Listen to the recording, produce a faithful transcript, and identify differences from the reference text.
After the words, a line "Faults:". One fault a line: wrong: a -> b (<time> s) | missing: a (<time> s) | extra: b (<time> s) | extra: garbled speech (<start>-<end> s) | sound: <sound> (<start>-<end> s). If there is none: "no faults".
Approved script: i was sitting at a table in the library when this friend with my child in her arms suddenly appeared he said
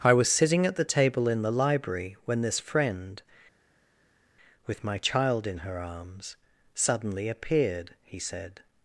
i was sitting at the table in the library when this friend with my child in her arms suddenly appeared he said
Faults:
wrong: a -> the (0.8 s)